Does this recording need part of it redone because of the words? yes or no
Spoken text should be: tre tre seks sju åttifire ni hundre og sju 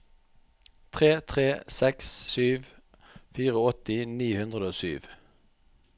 no